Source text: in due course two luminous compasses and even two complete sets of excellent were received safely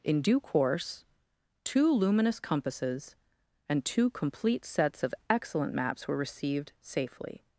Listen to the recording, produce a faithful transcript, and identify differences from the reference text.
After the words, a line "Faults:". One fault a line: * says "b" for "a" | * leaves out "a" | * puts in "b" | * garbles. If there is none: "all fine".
in due course two luminous compasses and two complete sets of excellent maps were received safely
Faults:
* leaves out "even"
* puts in "maps"